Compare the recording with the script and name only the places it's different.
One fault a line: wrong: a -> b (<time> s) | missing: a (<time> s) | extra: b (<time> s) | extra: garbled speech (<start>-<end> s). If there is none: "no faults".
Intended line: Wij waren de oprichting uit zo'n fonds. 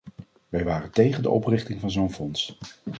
extra: tegen (0.9 s)
wrong: uit -> van (1.8 s)